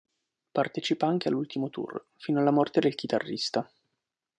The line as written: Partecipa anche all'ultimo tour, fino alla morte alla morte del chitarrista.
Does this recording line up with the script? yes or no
no